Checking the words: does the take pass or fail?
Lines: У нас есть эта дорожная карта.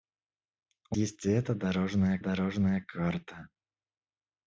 fail